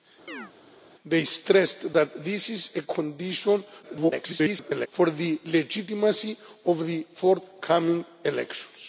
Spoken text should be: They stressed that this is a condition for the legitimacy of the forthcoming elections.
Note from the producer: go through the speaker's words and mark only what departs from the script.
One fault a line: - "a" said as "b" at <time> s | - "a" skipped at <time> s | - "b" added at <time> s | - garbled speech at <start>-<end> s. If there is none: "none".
- garbled speech at 3.8-4.9 s